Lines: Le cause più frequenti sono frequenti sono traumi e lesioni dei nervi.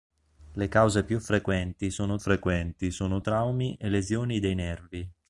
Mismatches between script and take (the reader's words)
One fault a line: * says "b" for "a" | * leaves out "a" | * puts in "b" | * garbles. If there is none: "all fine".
all fine